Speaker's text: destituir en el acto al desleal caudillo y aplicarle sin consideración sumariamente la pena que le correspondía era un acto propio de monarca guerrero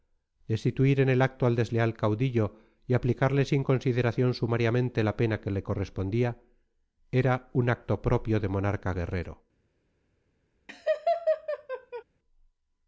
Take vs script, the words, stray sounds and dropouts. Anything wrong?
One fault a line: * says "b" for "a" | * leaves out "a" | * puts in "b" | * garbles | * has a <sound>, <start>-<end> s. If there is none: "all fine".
* has a laugh, 10.7-12.0 s